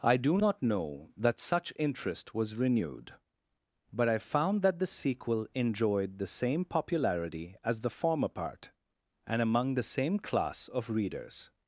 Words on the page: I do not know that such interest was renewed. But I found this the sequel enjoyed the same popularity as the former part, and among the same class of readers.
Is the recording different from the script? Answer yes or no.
yes